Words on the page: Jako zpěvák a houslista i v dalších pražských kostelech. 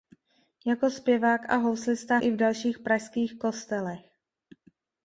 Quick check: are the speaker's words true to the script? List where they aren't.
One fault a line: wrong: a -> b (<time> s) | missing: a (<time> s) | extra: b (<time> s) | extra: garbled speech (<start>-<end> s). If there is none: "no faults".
no faults